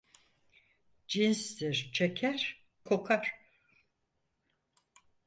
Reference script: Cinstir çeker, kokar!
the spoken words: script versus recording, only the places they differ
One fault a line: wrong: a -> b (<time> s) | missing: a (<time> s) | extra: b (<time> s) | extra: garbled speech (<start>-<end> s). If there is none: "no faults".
no faults